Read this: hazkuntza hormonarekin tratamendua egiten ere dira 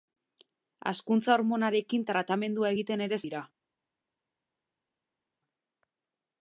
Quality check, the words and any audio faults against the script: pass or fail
pass